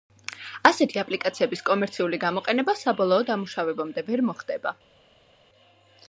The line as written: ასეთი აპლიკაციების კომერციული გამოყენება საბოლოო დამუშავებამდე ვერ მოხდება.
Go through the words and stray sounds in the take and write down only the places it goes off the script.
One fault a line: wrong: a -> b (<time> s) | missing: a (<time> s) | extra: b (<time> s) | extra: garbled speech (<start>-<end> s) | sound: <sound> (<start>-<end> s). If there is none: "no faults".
no faults